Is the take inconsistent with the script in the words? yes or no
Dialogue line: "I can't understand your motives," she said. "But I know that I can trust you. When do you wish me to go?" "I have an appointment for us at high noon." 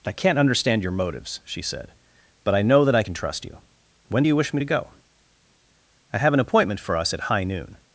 no